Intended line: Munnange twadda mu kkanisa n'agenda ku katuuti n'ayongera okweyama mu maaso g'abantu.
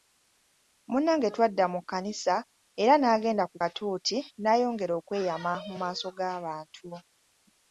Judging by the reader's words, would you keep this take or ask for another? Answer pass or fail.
fail